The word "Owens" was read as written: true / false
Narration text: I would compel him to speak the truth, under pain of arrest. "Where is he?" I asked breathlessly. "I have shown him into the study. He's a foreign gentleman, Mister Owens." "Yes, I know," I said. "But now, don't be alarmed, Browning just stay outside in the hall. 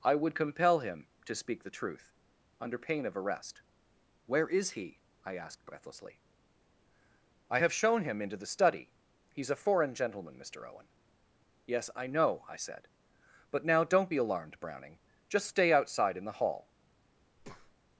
false